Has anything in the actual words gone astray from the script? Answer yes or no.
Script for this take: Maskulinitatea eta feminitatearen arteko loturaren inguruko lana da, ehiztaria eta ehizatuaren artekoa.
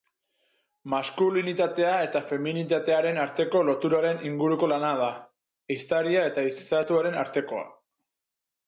no